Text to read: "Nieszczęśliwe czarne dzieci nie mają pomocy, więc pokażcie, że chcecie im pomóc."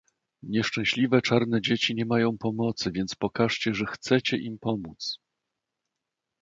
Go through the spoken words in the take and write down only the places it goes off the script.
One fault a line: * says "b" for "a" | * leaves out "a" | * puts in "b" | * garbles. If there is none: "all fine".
all fine